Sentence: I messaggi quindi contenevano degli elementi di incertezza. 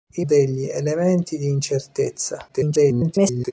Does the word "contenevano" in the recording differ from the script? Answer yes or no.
yes